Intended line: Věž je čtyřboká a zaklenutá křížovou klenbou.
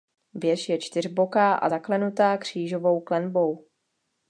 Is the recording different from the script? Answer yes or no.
no